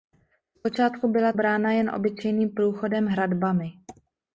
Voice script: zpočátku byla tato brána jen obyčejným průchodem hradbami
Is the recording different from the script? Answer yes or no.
yes